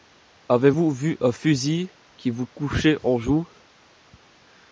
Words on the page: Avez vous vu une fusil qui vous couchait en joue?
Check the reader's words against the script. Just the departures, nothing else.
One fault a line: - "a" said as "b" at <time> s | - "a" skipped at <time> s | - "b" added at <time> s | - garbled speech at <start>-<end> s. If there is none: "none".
- "une" said as "un" at 1.2 s